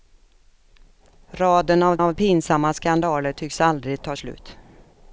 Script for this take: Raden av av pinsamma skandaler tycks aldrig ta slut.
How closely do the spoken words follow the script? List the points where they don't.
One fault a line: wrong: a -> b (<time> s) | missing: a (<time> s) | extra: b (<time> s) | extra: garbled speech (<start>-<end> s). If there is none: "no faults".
no faults